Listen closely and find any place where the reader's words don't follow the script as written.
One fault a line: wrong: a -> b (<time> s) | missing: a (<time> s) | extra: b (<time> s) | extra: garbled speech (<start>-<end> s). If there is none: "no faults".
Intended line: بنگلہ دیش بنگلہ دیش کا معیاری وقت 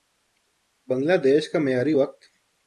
missing: بنگلہ دیش (1.4 s)